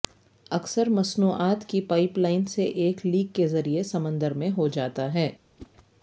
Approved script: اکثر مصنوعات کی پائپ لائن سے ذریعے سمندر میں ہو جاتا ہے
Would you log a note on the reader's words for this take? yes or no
yes